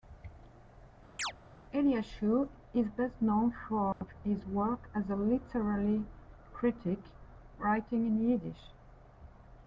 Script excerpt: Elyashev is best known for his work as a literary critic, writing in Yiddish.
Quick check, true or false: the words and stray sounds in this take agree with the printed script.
false